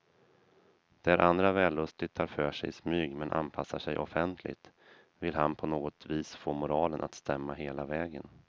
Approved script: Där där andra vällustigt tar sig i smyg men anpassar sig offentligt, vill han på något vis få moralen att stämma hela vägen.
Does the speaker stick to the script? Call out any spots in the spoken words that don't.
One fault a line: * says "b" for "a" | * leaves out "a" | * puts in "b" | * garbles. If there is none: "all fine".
* leaves out "där"
* puts in "för"